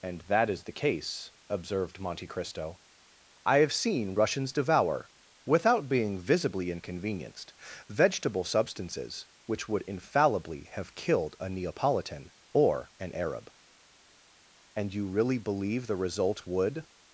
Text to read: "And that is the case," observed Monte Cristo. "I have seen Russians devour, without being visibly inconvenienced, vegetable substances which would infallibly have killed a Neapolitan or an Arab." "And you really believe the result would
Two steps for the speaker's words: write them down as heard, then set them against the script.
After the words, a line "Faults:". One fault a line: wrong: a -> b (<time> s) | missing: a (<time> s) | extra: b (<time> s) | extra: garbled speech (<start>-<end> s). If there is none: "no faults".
"And that is the case," observed Monte Cristo. "I have seen Russians devour, without being visibly inconvenienced, vegetable substances which would infallibly have killed a Neapolitan or an Arab." "And you really believe the result would
Faults:
no faults